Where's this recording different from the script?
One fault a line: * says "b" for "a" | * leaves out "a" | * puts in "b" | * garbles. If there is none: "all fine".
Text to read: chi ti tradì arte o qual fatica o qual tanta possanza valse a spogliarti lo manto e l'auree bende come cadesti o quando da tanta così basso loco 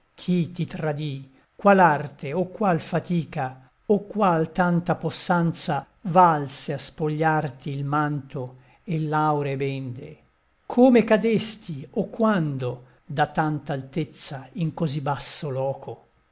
* puts in "qual"
* says "il" for "lo"
* puts in "altezza in"